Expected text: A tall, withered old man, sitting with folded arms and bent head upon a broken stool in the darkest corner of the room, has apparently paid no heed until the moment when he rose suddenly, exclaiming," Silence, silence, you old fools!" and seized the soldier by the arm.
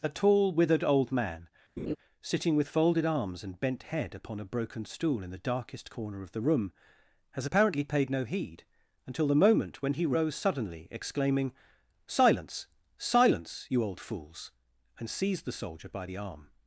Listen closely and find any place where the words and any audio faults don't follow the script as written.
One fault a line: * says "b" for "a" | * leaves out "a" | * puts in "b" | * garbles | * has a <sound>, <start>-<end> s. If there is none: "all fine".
* has a laugh, 1.8-2.0 s